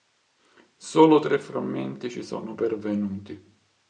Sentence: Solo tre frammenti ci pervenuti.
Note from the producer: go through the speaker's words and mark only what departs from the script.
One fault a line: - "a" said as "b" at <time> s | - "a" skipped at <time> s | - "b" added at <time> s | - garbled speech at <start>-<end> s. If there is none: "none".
- "sono" added at 2.2 s